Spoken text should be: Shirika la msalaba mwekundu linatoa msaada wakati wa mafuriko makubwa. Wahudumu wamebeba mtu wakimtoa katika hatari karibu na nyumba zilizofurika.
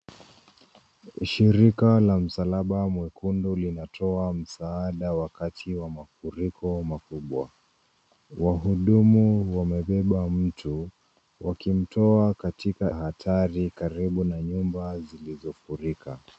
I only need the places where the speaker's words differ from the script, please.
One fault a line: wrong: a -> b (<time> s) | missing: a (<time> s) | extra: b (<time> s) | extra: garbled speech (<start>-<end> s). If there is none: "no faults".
no faults